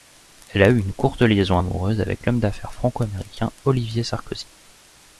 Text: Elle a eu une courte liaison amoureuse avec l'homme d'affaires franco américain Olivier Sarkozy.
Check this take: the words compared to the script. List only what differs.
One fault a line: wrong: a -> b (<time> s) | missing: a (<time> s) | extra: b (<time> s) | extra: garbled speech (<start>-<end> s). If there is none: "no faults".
no faults